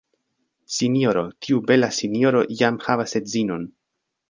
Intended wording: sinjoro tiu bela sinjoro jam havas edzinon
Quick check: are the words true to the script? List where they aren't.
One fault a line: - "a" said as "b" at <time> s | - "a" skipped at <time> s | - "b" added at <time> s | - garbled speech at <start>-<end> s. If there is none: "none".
none